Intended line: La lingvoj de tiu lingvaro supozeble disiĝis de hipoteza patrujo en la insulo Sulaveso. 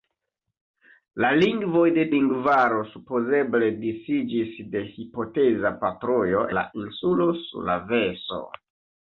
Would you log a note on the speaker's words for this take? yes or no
yes